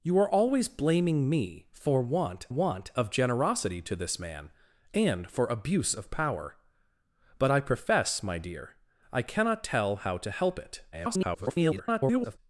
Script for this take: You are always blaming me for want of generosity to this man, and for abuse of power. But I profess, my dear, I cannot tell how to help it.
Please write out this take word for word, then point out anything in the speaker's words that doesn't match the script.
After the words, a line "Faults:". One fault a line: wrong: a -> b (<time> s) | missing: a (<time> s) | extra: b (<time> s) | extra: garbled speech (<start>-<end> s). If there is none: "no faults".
You are always blaming me for want want of generosity to this man, and for abuse of power. But I profess, my dear, I cannot tell how to help it. [garbled]
Faults:
extra: want (2.5 s)
extra: garbled speech (10.9-12.4 s)